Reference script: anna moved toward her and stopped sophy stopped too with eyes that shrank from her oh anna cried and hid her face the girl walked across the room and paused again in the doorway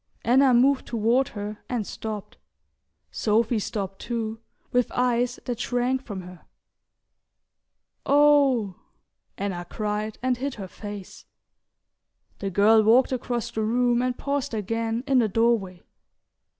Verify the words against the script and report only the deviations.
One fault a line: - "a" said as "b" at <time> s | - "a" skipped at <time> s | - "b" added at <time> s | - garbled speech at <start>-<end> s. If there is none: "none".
none